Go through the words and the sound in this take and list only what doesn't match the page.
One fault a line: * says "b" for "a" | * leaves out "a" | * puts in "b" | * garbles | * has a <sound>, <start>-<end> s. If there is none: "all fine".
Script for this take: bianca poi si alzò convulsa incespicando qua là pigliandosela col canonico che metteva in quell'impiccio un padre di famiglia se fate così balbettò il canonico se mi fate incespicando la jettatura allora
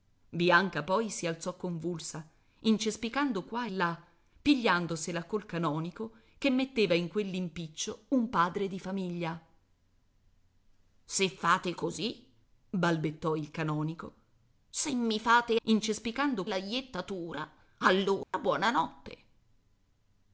* has a dropout, 18.2-18.3 s